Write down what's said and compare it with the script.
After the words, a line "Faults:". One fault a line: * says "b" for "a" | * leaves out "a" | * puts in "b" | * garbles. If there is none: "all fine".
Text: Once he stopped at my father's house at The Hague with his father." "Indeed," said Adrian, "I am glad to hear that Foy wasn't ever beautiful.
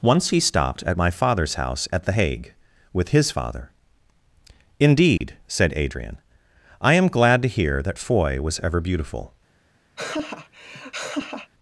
Once he stopped at my father's house at The Hague with his father." "Indeed," said Adrian, "I am glad to hear that Foy was ever beautiful.
Faults:
* says "was" for "wasn't"